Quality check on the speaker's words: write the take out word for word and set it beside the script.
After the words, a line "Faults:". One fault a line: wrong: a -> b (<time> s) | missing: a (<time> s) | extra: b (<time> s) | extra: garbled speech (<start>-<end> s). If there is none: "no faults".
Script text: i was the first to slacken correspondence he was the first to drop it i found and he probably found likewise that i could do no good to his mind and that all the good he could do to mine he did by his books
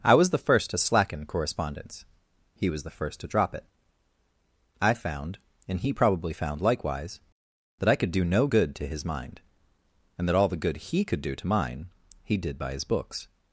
i was the first to slacken correspondence he was the first to drop it i found and he probably found likewise that i could do no good to his mind and that all the good he could do to mine he did by his books
Faults:
no faults